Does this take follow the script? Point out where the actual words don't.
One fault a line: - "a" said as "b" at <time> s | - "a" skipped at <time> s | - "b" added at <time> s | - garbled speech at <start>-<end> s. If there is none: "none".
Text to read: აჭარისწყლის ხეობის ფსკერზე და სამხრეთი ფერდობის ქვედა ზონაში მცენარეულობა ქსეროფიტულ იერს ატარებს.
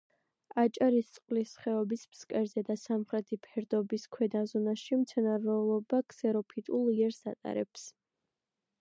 none